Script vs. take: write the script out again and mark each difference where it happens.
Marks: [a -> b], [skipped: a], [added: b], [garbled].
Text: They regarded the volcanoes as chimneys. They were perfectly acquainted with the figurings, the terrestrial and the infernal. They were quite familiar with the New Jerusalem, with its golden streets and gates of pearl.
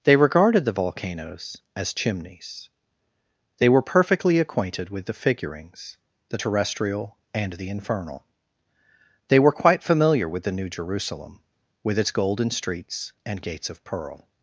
They regarded the volcanoes as chimneys. They were perfectly acquainted with the figurings, the terrestrial and the infernal. They were quite familiar with the New Jerusalem, with its golden streets and gates of pearl.